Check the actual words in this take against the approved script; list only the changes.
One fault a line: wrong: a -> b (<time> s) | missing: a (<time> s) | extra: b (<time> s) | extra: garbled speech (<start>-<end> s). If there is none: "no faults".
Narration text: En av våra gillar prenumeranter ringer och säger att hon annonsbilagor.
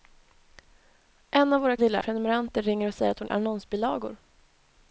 no faults